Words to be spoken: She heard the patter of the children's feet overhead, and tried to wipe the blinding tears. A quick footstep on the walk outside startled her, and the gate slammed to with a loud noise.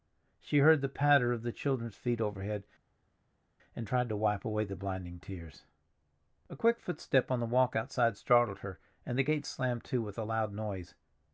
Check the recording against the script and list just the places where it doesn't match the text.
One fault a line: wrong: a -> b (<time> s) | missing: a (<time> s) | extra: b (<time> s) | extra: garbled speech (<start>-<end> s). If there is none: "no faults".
extra: away (4.4 s)